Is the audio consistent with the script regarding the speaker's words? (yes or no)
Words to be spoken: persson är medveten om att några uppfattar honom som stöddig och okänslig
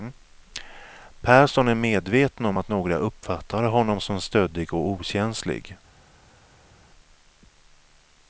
yes